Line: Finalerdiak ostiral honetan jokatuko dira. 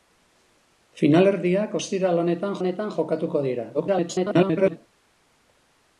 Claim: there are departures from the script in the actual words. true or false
true